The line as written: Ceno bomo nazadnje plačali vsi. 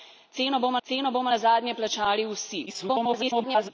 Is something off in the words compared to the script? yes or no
yes